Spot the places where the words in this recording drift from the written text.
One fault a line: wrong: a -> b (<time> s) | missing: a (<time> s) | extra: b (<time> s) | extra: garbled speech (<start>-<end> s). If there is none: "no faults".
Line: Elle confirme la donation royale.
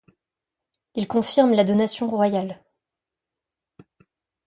wrong: Elle -> Il (0.9 s)